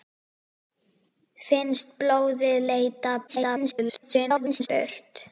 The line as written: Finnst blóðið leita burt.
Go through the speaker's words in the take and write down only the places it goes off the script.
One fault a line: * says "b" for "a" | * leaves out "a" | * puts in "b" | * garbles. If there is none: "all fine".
* garbles